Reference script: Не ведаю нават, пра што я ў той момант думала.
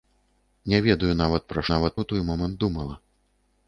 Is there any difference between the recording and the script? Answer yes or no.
yes